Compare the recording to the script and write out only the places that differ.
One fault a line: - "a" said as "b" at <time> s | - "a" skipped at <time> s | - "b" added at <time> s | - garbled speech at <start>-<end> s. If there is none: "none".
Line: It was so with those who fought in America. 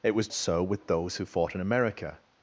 none